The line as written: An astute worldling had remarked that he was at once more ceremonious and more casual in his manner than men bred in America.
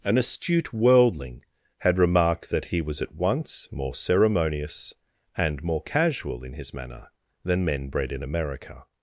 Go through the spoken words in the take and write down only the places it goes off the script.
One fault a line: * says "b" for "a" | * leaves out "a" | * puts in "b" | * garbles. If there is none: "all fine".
all fine